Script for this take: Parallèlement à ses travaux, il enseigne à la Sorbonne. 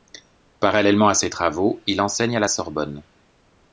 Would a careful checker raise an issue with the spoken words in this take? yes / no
no